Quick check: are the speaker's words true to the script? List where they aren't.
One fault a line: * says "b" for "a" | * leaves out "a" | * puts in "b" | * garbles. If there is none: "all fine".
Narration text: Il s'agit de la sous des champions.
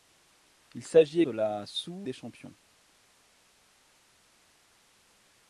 all fine